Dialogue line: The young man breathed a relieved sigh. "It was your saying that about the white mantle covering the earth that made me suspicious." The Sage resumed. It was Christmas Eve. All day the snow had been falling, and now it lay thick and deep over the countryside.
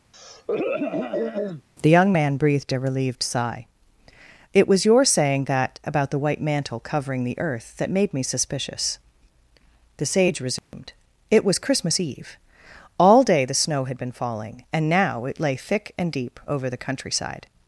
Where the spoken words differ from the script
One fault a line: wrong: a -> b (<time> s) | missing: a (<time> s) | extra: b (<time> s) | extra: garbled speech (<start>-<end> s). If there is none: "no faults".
no faults